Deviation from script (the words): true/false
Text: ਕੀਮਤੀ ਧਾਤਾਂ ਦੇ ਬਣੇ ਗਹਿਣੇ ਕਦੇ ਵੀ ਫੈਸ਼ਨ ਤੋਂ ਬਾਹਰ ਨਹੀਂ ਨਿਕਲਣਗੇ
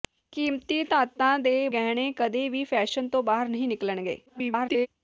true